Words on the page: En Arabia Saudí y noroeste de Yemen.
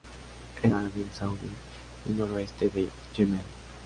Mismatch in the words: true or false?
false